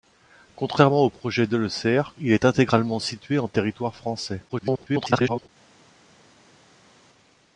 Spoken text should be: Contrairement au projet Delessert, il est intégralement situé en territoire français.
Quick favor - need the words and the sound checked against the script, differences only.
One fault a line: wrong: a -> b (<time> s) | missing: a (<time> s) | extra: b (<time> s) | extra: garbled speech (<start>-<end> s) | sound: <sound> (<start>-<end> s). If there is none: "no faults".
extra: garbled speech (4.5-5.5 s)